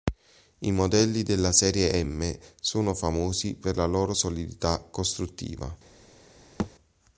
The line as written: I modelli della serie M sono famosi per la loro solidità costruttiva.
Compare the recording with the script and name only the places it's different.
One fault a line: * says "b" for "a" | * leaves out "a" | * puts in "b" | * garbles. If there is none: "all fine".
all fine